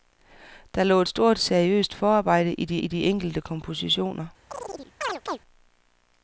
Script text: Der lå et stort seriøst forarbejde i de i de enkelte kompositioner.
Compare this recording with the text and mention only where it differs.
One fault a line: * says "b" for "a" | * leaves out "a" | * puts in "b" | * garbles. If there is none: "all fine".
all fine